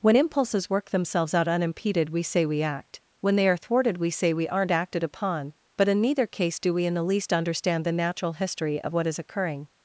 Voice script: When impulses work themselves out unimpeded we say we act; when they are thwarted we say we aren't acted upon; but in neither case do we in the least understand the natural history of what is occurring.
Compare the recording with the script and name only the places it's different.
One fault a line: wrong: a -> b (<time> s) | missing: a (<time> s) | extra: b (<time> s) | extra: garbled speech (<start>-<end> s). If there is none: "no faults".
no faults